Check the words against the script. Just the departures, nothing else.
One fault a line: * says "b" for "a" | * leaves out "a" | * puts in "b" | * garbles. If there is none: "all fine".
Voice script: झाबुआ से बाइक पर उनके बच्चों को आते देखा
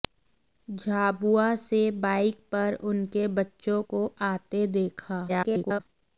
* garbles